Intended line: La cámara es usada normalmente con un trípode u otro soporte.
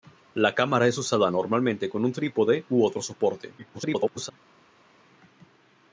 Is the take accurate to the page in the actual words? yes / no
no